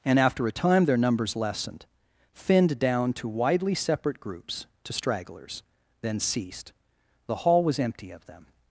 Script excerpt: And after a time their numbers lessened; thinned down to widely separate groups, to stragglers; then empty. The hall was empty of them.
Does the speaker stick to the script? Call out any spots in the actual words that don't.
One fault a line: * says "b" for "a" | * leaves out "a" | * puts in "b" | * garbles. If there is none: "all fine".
* says "ceased" for "empty"